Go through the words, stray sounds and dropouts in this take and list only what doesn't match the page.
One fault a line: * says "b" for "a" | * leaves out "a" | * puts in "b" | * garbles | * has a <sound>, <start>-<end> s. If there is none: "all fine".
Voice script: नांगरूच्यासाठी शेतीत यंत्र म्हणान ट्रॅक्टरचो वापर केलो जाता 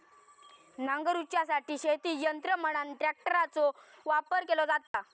* has a dropout, 4.9-4.9 s